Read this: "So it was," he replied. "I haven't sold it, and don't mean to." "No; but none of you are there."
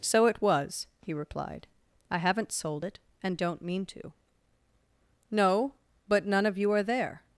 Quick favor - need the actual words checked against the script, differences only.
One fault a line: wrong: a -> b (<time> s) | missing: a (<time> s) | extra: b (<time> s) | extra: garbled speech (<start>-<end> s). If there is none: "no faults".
no faults